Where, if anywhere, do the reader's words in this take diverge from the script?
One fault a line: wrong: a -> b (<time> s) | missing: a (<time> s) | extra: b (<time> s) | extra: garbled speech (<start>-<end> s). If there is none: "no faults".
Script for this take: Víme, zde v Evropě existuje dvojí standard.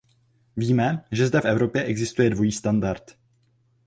extra: že (1.1 s)